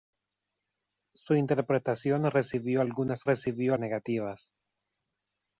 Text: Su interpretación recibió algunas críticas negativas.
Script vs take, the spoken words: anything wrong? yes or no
yes